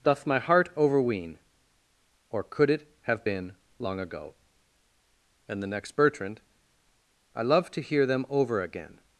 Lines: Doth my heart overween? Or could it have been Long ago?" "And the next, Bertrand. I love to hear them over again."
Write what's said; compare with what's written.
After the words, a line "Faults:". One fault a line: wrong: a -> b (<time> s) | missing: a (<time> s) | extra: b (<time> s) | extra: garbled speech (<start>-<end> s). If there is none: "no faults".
Doth my heart overween? Or could it have been Long ago?" "And the next, Bertrand. I love to hear them over again."
Faults:
no faults